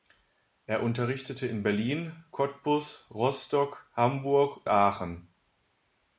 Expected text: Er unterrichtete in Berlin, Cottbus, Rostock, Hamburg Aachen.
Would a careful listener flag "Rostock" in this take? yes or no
no